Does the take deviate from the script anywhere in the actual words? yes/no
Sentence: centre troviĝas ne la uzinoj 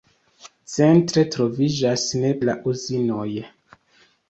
no